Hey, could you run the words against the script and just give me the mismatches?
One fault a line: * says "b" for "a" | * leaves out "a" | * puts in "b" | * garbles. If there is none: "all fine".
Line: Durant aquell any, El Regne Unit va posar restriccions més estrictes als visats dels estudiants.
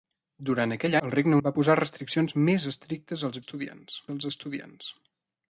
* leaves out "any"
* leaves out "Unit"
* says "estudiants" for "visats"